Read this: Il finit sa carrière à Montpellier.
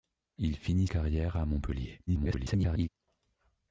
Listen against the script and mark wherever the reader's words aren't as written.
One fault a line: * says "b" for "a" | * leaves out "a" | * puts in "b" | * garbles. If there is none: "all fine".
* leaves out "sa"
* garbles